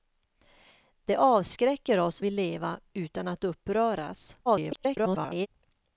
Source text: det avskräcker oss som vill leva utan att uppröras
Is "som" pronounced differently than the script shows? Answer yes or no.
yes